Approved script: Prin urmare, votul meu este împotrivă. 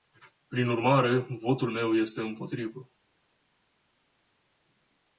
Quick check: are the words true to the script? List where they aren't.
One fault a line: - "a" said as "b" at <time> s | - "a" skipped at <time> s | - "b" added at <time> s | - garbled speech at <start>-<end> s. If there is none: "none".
none